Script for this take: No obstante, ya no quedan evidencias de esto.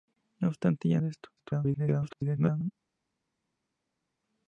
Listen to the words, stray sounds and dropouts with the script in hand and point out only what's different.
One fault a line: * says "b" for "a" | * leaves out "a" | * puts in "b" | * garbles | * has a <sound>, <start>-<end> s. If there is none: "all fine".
* leaves out "no quedan evidencias"
* garbles